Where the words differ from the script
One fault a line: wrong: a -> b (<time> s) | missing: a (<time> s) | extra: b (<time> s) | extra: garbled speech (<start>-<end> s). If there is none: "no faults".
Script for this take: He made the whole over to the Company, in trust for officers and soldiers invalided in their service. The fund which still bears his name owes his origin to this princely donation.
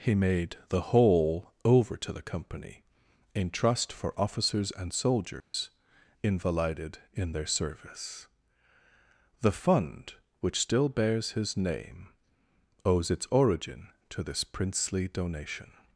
wrong: his -> its (13.1 s)